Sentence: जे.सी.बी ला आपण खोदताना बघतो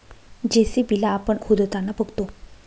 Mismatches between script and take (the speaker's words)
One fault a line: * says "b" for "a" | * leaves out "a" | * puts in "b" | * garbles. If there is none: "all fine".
all fine